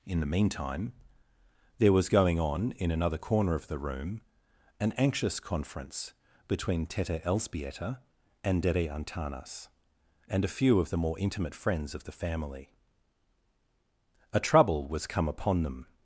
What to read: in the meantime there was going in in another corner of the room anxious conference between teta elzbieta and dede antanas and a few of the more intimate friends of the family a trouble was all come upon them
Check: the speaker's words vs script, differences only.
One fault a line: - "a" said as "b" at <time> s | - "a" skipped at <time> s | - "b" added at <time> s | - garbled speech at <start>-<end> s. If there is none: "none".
- "in" said as "on" at 2.4 s
- "an" added at 4.8 s
- "all" skipped at 15.1 s